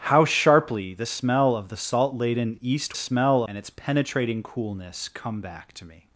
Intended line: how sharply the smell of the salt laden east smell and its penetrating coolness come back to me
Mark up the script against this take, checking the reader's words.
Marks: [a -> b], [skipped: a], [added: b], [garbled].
how sharply the smell of the salt laden east smell and its penetrating coolness come back to me